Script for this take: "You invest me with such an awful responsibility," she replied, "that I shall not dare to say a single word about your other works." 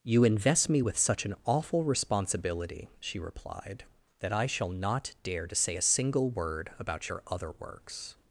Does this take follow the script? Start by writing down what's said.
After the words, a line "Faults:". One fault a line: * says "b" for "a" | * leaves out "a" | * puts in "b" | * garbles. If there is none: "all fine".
"You invest me with such an awful responsibility," she replied, "that I shall not dare to say a single word about your other works."
Faults:
all fine